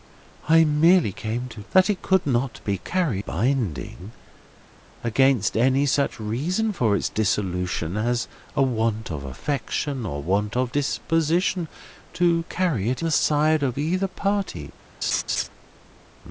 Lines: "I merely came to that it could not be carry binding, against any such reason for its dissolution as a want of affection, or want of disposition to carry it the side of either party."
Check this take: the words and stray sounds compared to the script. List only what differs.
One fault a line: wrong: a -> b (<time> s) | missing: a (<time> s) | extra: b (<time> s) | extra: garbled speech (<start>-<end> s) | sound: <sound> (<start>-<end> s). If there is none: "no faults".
sound: laugh (15.0-15.5 s)